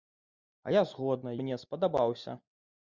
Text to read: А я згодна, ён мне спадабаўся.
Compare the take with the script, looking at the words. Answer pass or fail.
fail